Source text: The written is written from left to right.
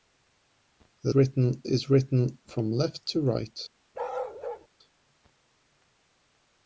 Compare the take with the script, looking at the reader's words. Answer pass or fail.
pass